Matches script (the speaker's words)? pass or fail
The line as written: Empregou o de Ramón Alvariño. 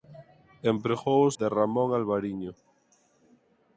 pass